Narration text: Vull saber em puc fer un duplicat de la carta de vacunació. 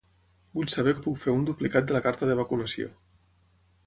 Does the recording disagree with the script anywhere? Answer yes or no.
no